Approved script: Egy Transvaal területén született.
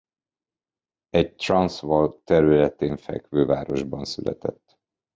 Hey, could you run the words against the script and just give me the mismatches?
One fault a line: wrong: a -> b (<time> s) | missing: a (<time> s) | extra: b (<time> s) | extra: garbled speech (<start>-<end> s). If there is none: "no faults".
extra: fekvő városban (3.0 s)